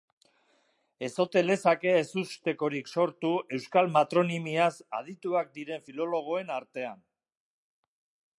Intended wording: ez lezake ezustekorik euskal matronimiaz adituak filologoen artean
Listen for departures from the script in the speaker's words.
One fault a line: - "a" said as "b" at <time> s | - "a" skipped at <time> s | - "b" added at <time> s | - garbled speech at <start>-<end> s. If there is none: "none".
- "ote" added at 1.2 s
- "sortu" added at 2.9 s
- "diren" added at 5.6 s